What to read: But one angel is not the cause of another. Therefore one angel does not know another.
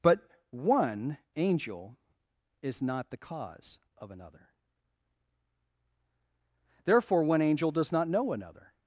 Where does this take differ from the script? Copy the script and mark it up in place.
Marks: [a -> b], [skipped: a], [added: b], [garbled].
But one angel is not the cause of another. Therefore one angel does not know another.